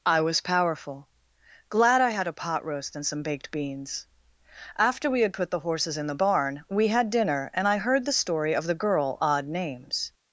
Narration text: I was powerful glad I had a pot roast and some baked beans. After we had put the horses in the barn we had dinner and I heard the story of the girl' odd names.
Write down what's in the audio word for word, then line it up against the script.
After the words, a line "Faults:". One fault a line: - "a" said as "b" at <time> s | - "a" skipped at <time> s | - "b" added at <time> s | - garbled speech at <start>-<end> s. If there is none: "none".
I was powerful glad I had a pot roast and some baked beans. After we had put the horses in the barn we had dinner and I heard the story of the girl' odd names.
Faults:
none